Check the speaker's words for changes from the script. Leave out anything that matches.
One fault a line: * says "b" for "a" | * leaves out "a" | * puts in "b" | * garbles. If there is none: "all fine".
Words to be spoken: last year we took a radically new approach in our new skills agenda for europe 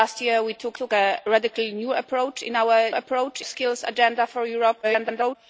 * puts in "took"
* says "approach" for "new"
* garbles